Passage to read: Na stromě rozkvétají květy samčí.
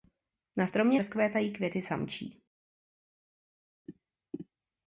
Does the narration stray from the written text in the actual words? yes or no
no